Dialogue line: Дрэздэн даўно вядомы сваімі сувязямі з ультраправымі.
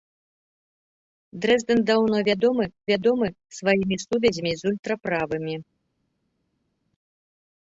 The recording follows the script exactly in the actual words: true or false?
false